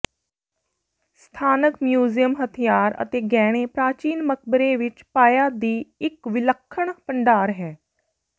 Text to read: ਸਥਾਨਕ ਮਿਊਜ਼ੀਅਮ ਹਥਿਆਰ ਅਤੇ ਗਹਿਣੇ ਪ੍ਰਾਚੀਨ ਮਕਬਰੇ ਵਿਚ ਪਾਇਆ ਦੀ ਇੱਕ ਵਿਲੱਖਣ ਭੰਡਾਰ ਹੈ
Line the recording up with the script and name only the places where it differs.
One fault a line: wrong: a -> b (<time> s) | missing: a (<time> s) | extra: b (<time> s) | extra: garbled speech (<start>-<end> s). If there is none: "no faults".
no faults